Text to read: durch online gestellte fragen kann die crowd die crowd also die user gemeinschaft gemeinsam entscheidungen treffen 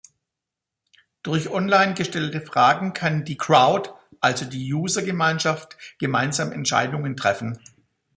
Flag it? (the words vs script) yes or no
yes